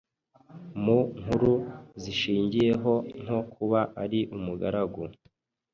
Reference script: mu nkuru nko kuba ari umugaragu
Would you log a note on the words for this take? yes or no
yes